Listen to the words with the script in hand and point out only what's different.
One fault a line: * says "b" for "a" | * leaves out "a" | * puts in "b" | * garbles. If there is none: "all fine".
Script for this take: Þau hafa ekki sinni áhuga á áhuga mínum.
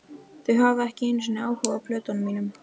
* puts in "einu"
* says "plötunum" for "áhuga"